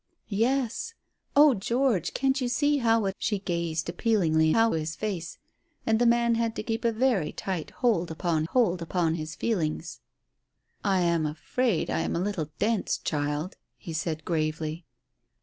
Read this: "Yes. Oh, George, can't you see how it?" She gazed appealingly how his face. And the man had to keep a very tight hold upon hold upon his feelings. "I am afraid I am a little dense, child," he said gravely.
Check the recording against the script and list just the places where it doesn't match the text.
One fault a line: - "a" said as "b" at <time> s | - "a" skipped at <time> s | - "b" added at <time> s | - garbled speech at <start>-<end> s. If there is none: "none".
none